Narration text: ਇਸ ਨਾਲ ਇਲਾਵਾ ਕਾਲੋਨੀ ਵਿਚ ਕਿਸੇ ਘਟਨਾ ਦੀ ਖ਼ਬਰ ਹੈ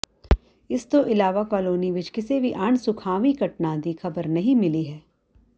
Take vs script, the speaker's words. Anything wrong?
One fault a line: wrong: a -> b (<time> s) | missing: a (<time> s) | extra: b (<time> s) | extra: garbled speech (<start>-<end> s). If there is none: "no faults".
wrong: ਨਾਲ -> ਤੋਂ (0.8 s)
extra: ਵੀ ਅਣਸੁਖਾਵੀਂ (2.4 s)
extra: ਨਹੀਂ ਮਿਲੀ (4.3 s)